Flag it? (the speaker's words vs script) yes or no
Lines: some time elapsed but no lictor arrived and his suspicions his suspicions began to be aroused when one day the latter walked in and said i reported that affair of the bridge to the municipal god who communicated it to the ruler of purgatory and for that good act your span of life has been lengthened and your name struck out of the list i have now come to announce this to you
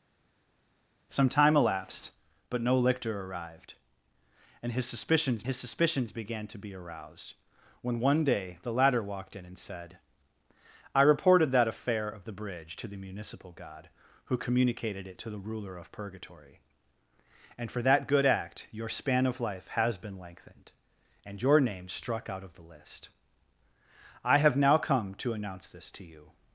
no